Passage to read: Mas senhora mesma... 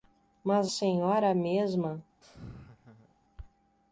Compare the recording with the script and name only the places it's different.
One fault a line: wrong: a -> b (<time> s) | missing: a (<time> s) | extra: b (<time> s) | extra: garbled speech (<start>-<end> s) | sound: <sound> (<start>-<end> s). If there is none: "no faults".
sound: laugh (2.2-3.2 s)